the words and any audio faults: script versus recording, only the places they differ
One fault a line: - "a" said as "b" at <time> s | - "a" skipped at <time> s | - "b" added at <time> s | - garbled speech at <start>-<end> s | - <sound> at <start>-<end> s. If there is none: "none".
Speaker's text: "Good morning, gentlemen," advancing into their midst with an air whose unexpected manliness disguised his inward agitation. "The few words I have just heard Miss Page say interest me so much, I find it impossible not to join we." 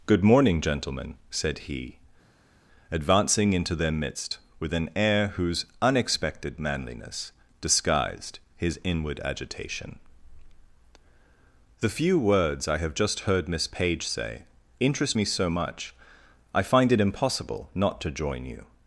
- "said he" added at 1.3 s
- "we" said as "you" at 18.5 s